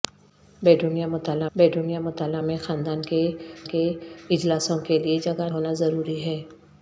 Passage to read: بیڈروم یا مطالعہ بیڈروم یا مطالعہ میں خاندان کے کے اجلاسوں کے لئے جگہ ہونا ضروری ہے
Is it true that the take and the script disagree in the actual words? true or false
false